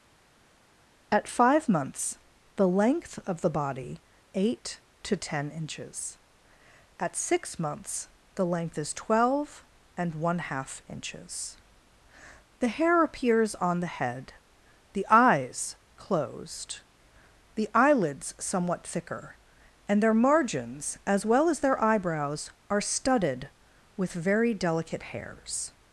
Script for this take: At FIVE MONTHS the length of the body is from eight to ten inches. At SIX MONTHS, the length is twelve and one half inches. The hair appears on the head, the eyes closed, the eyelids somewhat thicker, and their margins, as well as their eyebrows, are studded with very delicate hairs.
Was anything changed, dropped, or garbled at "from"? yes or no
yes